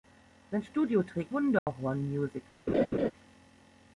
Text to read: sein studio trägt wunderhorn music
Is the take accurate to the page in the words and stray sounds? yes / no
no